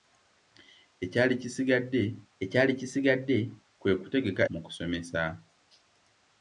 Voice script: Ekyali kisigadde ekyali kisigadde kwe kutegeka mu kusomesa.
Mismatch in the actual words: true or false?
false